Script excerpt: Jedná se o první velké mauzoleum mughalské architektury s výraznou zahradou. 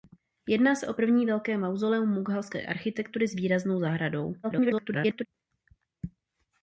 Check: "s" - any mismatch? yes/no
no